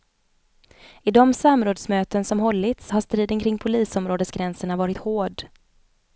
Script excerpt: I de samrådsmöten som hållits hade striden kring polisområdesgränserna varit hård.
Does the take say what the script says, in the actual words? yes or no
no